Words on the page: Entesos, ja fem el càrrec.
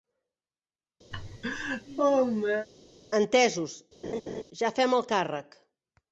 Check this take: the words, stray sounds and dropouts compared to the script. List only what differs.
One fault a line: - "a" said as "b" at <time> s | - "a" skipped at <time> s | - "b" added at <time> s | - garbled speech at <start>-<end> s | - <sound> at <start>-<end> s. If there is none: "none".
- laugh at 1.1-2.7 s
- laugh at 4.0-4.4 s